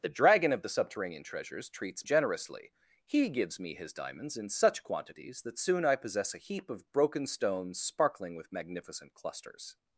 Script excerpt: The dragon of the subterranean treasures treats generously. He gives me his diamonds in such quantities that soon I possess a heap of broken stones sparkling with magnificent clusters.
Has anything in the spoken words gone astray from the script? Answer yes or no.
no